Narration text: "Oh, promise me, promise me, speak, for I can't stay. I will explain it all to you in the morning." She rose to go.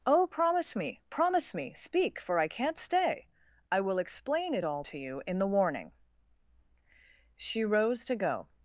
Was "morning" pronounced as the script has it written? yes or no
no